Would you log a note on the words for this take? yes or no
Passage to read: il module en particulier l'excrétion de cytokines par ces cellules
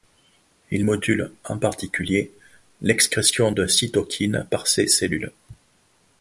no